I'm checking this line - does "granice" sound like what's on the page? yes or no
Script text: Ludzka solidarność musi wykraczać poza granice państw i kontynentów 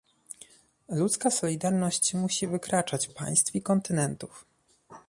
no